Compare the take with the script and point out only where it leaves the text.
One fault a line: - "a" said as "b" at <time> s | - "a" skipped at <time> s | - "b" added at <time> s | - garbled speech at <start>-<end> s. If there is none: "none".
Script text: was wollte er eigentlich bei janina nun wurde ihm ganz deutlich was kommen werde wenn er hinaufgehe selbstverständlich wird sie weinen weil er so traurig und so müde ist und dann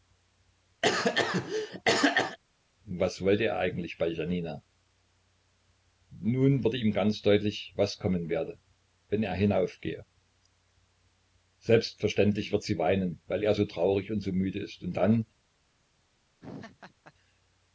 none